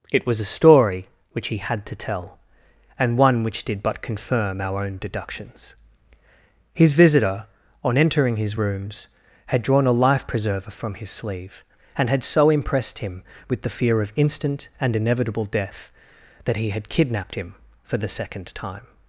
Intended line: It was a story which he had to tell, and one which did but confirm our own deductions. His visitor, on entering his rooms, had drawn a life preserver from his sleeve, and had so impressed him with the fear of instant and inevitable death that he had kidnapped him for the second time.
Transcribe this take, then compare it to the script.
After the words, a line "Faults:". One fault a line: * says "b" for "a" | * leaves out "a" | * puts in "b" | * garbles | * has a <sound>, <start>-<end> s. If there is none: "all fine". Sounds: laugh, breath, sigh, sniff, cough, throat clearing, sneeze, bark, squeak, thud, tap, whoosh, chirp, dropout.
It was a story which he had to tell, and one which did but confirm our own deductions. His visitor, on entering his rooms, had drawn a life preserver from his sleeve, and had so impressed him with the fear of instant and inevitable death that he had kidnapped him for the second time.
Faults:
all fine